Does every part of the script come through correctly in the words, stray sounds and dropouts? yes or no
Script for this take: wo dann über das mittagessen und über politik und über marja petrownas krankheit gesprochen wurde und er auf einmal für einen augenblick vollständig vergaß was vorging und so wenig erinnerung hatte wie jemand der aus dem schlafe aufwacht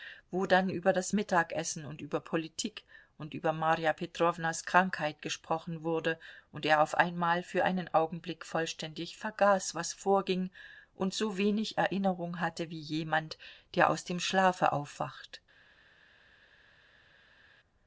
yes